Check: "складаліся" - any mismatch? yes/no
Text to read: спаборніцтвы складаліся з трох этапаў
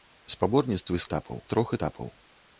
yes